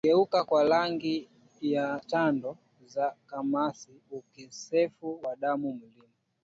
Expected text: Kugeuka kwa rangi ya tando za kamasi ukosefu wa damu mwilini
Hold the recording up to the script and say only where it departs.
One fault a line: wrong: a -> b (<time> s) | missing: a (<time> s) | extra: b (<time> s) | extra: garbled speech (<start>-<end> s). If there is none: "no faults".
no faults